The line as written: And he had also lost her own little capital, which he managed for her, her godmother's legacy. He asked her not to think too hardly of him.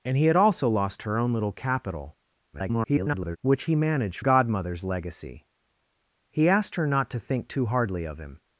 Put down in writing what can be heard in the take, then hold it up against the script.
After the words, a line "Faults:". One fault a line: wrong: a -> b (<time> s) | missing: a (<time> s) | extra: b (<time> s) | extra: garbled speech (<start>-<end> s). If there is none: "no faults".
And he had also lost her own little capital, [garbled] which he managed godmother's legacy. He asked her not to think too hardly of him.
Faults:
extra: garbled speech (2.5-3.4 s)
missing: for her her (4.2 s)